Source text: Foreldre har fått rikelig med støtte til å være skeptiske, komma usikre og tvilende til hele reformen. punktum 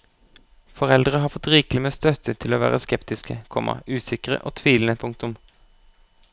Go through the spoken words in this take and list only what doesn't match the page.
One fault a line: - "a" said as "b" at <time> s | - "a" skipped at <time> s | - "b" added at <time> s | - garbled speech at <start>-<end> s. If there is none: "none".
- "til hele reformen" skipped at 5.0 s